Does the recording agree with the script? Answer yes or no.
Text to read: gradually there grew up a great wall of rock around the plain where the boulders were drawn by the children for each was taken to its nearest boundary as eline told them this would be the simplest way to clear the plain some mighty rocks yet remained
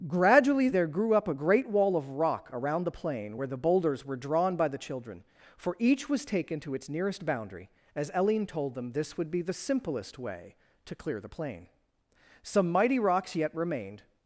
yes